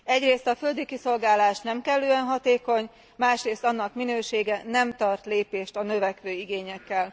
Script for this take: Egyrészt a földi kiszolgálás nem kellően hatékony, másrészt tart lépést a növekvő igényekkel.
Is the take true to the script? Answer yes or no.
no